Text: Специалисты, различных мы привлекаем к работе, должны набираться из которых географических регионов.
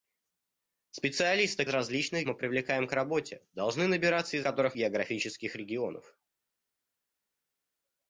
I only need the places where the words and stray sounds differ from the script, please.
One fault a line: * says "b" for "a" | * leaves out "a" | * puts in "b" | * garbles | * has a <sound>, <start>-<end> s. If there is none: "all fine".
all fine